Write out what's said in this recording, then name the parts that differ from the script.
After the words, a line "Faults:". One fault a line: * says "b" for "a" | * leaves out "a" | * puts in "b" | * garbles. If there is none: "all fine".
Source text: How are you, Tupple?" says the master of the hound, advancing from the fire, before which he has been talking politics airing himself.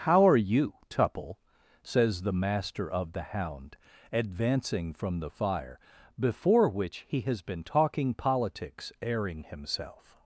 How are you, Tupple?" says the master of the hound, advancing from the fire, before which he has been talking politics airing himself.
Faults:
all fine